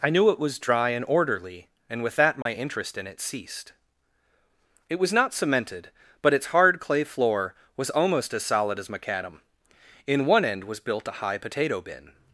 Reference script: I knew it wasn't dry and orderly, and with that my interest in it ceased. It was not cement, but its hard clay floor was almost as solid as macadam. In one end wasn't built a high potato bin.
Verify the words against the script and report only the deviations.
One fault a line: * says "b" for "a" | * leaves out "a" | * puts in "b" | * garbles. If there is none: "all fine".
* says "was" for "wasn't"
* says "cemented" for "cement"
* says "was" for "wasn't"